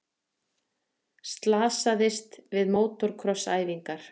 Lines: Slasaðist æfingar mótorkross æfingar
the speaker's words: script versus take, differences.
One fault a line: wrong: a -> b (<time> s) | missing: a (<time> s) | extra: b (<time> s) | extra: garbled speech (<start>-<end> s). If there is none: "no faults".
wrong: æfingar -> við (2.6 s)